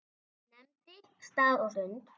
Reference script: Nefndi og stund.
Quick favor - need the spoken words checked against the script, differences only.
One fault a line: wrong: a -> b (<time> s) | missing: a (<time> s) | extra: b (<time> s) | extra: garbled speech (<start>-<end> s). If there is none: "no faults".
extra: stað (1.3 s)